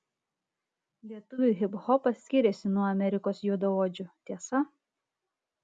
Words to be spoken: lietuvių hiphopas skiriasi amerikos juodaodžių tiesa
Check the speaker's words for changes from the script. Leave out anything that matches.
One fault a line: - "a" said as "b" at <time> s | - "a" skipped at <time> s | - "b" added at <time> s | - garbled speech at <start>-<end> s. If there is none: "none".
- "nuo" added at 2.8 s